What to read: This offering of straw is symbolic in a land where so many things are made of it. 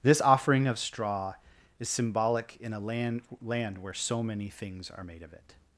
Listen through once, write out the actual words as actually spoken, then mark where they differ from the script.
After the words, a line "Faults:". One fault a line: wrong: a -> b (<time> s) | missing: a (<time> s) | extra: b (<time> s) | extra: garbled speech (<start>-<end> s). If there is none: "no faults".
This offering of straw is symbolic in a land land where so many things are made of it.
Faults:
extra: land (3.4 s)